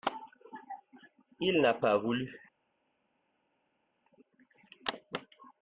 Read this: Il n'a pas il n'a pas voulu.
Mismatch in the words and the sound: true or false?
true